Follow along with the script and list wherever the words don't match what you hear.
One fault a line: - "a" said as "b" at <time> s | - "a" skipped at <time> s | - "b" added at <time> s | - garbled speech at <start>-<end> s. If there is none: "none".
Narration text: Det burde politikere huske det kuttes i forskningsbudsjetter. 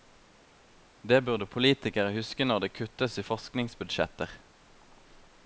- "når" added at 2.5 s